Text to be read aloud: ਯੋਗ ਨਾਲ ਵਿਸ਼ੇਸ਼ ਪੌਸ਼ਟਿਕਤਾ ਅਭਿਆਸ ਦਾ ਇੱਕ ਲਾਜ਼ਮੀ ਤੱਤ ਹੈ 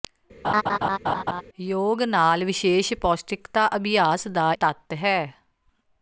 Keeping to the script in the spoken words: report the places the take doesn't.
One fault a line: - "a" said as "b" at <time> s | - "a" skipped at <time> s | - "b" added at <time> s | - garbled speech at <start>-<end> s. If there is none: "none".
- "ਇੱਕ ਲਾਜ਼ਮੀ" skipped at 4.5 s